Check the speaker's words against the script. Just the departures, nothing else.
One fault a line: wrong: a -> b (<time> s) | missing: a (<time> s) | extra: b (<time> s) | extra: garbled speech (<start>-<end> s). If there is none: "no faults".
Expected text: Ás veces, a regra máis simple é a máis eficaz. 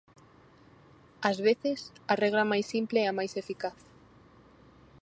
no faults